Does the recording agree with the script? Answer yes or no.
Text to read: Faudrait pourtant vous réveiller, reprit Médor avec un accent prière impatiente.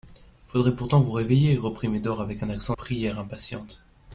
yes